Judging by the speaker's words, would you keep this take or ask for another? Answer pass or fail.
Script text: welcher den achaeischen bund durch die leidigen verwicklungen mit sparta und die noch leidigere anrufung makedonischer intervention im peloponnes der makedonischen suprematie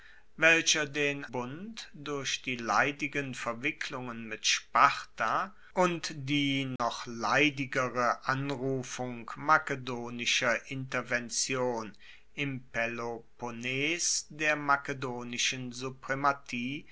fail